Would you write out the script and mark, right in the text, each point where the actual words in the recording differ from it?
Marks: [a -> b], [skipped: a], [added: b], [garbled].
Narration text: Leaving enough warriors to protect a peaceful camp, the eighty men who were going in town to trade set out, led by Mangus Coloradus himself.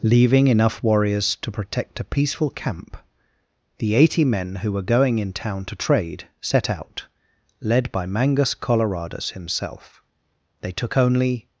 Leaving enough warriors to protect a peaceful camp, the eighty men who were going in town to trade set out, led by Mangus Coloradus himself. [added: They took only]